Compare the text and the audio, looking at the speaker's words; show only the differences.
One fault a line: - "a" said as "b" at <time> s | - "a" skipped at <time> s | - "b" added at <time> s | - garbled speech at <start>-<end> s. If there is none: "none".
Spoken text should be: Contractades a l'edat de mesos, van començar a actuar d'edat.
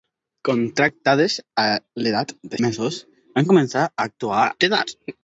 none